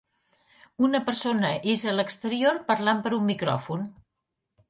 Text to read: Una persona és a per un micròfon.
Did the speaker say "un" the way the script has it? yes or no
yes